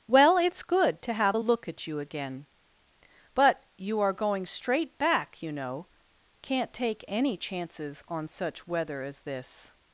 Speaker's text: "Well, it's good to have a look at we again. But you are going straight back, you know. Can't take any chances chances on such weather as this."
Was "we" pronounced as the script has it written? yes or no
no